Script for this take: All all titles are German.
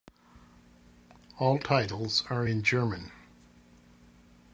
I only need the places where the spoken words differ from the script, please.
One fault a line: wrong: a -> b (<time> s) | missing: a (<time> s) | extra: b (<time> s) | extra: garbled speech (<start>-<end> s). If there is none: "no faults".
missing: all (1.6 s)
extra: in (2.4 s)